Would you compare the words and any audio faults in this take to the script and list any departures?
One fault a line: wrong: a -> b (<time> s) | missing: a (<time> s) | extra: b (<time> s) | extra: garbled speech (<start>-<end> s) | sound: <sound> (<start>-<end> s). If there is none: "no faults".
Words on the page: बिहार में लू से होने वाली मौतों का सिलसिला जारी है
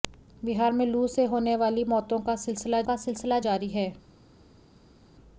extra: का सिलसिला (2.8 s)